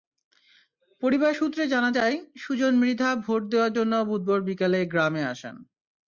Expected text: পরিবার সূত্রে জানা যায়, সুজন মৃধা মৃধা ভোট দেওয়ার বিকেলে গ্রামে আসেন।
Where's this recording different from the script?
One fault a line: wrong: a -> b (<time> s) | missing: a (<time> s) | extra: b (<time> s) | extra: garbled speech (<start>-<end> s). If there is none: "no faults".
missing: মৃধা (3.1 s)
extra: জন্য বুধবার (3.7 s)